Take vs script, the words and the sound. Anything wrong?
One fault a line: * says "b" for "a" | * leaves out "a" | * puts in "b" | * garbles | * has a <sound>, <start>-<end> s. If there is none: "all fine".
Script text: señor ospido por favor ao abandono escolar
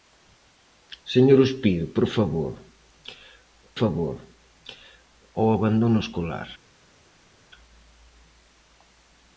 * puts in "favor"